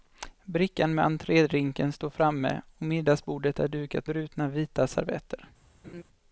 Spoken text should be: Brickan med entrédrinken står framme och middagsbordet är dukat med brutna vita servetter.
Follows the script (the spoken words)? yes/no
no